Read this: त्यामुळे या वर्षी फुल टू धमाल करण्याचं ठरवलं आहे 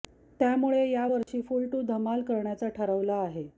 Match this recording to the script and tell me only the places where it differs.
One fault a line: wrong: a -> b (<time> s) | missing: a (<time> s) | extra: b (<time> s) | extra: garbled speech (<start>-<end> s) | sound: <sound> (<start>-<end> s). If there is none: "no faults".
sound: dropout (1.2-1.3 s)